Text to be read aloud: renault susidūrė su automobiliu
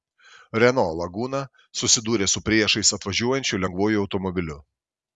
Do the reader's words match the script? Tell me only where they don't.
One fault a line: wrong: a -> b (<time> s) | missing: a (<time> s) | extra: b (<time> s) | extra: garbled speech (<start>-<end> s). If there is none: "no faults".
extra: laguna (1.0 s)
extra: priešais atvažiuojančiu lengvuoju (2.5 s)